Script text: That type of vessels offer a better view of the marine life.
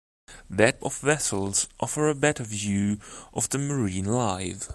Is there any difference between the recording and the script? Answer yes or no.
yes